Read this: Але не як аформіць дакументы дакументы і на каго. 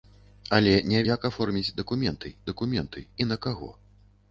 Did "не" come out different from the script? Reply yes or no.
no